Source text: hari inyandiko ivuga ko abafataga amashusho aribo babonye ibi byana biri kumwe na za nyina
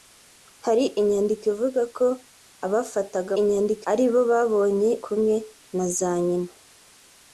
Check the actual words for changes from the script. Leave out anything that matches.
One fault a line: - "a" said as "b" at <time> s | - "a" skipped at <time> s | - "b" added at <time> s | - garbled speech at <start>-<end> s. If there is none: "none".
- "amashusho" said as "inyandiko" at 3.4 s
- "ibi byana biri" skipped at 4.9 s